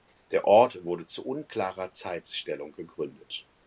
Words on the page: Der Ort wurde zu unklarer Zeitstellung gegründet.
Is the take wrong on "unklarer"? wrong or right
right